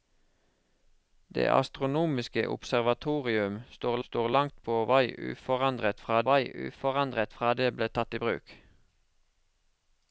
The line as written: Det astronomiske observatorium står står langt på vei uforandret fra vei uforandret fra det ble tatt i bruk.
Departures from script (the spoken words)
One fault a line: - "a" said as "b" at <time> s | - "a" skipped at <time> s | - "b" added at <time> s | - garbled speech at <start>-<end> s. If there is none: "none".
none